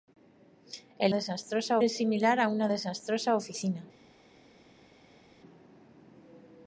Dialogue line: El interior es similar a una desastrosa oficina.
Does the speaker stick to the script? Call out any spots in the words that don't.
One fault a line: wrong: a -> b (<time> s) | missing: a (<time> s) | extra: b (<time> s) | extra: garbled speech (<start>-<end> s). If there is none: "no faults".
wrong: interior -> desastrosa (1.1 s)